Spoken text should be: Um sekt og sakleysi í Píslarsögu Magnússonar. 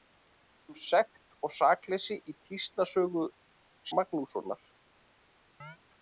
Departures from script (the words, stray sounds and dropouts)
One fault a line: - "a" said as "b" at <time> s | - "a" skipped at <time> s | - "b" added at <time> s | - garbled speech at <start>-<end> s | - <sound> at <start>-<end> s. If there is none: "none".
- chirp at 5.6-5.8 s